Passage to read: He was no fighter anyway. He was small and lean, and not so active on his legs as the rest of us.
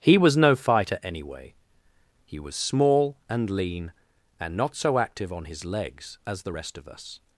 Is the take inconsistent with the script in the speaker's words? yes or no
no